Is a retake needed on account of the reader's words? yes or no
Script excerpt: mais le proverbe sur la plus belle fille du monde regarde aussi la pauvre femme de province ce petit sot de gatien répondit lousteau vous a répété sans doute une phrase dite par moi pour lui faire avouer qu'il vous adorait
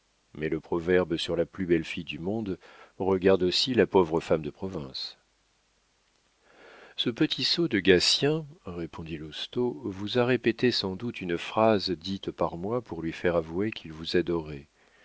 no